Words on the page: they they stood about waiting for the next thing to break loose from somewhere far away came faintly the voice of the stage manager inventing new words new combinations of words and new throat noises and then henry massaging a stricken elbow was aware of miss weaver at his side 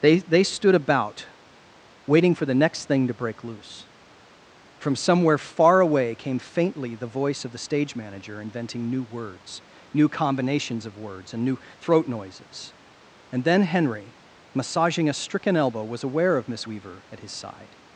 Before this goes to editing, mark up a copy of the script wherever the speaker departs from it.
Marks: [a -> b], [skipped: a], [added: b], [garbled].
they they stood about waiting for the next thing to break loose from somewhere far away came faintly the voice of the stage manager inventing new words new combinations of words and new throat noises and then henry massaging a stricken elbow was aware of miss weaver at his side